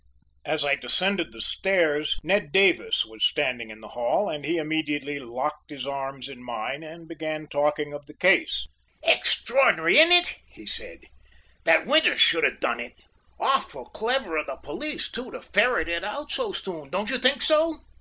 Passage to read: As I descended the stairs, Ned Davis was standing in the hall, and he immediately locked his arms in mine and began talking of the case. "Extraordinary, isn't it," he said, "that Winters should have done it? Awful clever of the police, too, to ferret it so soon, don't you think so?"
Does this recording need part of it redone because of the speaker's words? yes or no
yes